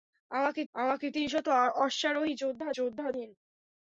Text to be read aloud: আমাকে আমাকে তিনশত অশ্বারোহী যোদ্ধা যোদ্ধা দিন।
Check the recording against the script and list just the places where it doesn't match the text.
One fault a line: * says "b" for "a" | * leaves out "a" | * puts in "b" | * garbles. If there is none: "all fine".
all fine